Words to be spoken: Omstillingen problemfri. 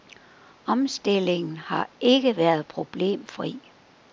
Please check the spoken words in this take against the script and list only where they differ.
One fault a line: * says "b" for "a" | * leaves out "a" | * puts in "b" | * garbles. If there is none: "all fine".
* puts in "har ikke været"